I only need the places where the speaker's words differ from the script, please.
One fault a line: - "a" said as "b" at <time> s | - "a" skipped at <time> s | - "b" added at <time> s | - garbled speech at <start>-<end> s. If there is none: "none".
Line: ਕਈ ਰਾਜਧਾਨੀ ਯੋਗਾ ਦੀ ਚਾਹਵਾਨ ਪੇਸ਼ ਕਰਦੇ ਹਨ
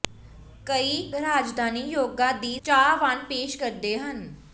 none